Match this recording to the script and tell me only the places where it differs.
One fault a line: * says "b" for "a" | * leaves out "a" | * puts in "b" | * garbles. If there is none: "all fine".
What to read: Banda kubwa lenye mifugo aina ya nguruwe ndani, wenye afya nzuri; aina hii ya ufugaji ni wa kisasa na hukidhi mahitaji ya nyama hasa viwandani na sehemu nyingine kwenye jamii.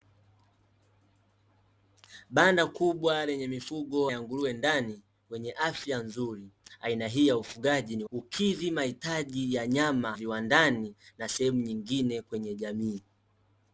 * leaves out "aina"
* leaves out "wa kisasa na"
* leaves out "hasa"